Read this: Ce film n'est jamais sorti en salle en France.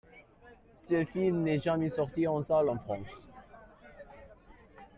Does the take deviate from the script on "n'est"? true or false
false